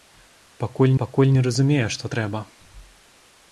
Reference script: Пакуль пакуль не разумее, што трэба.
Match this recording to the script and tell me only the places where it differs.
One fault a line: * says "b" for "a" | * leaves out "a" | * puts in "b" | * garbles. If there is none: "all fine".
all fine